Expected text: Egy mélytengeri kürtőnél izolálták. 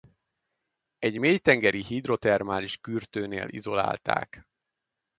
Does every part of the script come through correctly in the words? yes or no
no